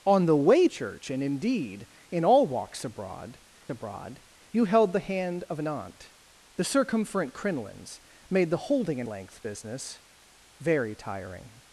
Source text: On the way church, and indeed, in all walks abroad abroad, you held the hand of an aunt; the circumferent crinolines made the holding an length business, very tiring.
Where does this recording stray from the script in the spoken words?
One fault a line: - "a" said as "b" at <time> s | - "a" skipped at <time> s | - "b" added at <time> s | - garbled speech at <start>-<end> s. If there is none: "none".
none